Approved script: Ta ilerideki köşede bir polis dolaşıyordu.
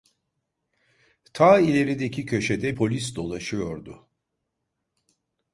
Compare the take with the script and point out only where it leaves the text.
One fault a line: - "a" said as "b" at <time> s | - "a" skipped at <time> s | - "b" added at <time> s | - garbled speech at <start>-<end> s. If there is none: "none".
- "bir" skipped at 2.8 s